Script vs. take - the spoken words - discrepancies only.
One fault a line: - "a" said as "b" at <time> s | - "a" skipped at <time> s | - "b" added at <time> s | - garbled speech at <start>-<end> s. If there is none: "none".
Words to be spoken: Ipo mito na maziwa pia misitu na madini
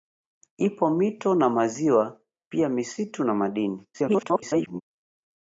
- garbled speech at 3.9-4.8 s